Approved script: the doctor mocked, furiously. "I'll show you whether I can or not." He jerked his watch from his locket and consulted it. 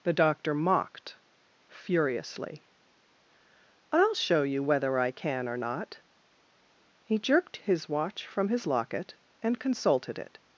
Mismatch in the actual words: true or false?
false